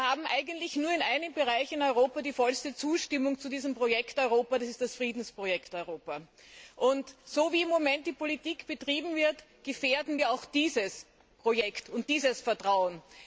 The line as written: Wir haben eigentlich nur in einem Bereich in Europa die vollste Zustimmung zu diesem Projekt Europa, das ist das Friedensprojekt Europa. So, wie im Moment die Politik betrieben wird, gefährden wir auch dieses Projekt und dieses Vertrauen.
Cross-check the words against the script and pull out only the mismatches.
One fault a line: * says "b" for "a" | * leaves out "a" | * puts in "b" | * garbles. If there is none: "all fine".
all fine